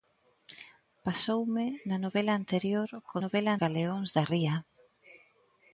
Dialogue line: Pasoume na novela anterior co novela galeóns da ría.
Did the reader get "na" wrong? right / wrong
right